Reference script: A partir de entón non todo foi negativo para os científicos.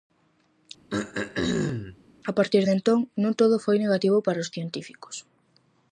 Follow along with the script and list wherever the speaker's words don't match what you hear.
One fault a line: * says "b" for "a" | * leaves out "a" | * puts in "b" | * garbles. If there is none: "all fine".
all fine